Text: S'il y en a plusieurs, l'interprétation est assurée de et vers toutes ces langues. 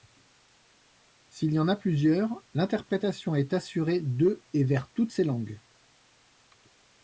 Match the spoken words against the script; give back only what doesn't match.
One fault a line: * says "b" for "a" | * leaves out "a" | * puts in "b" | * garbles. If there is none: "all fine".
all fine